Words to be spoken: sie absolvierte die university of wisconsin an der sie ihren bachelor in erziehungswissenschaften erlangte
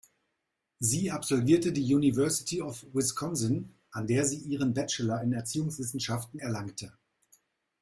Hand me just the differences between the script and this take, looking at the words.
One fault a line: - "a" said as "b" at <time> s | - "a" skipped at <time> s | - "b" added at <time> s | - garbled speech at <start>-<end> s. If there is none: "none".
none